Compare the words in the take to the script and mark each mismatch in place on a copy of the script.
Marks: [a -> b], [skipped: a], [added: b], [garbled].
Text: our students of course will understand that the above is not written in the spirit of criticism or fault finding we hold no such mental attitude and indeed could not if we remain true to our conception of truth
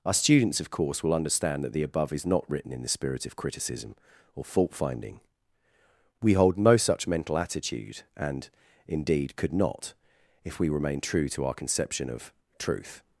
our students of course will understand that the above is not written in the spirit of criticism or fault finding we hold no such mental attitude and indeed could not if we remain true to our conception of truth